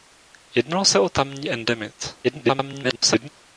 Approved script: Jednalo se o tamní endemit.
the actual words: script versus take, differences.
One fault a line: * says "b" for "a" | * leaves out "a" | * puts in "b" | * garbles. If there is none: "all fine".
* garbles